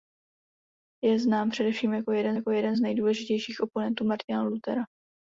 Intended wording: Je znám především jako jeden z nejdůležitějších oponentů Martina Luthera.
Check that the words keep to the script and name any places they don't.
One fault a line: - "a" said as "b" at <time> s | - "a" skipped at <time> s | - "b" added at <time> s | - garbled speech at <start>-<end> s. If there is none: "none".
- "jako jeden" added at 2.3 s